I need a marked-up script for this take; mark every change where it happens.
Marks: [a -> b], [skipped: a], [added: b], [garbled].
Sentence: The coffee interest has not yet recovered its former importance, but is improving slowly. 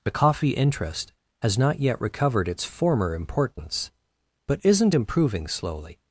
The coffee interest has not yet recovered its former importance, but [is -> isn't] improving slowly.